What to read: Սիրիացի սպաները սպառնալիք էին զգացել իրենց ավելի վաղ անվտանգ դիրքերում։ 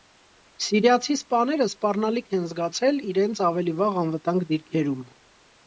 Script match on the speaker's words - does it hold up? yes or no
no